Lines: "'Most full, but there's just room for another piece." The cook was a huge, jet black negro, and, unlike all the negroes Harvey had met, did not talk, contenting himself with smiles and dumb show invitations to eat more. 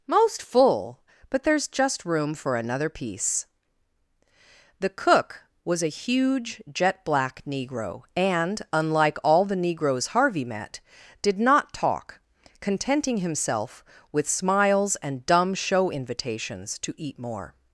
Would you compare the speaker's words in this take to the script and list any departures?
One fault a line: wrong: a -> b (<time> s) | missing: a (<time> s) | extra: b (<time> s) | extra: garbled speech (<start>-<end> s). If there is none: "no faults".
missing: had (10.4 s)